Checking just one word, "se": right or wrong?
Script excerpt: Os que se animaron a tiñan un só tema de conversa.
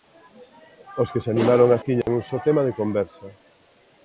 right